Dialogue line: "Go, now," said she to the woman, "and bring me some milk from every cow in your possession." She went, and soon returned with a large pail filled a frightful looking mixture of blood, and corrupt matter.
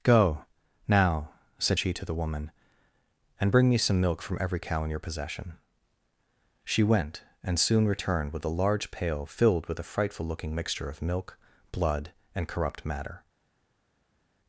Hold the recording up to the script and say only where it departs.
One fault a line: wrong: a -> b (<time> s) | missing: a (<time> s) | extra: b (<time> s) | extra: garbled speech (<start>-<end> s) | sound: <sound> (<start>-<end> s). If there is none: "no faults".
extra: with (9.7 s)
extra: milk (11.0 s)